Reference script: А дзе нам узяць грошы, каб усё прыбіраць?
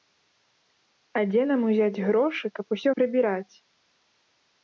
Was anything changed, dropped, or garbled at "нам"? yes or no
no